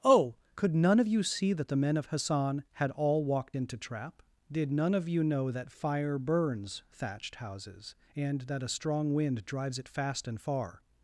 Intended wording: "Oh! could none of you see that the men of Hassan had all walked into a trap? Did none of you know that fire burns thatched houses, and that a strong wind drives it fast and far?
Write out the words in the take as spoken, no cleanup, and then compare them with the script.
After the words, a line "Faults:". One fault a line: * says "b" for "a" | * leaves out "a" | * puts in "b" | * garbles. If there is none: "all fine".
"Oh! could none of you see that the men of Hassan had all walked into trap? Did none of you know that fire burns thatched houses, and that a strong wind drives it fast and far?
Faults:
* leaves out "a"